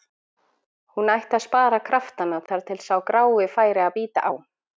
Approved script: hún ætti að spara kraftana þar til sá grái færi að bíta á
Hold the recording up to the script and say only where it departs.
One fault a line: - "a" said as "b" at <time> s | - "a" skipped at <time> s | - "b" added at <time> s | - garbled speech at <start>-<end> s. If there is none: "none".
none